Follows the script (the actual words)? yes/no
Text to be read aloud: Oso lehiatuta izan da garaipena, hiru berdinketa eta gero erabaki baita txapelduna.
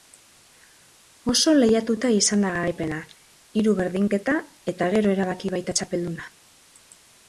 yes